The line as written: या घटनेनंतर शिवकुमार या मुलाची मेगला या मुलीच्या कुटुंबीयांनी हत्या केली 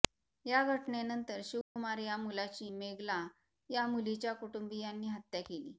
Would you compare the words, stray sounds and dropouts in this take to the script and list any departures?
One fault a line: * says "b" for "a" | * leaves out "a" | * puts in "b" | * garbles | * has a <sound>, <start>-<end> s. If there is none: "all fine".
* has a dropout, 1.6-1.8 s